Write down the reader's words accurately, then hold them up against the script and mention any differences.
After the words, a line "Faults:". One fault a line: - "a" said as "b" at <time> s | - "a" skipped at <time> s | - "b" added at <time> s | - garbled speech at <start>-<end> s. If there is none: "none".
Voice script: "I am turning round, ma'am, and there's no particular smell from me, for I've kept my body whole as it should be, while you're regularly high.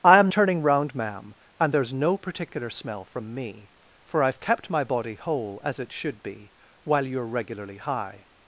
"I am turning round, ma'am, and there's no particular smell from me, for I've kept my body whole as it should be, while you're regularly high.
Faults:
none